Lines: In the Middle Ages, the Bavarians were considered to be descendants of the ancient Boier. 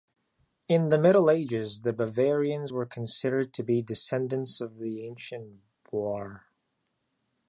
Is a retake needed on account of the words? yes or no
no